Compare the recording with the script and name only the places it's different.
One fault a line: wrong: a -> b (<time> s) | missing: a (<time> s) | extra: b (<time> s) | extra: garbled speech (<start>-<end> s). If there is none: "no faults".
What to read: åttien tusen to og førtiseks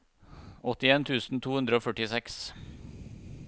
extra: hundre (1.6 s)